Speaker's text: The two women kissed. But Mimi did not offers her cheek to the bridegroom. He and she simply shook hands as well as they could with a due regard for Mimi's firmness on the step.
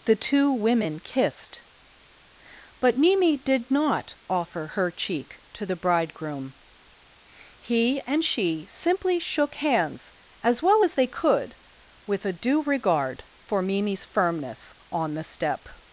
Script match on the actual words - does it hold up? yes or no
no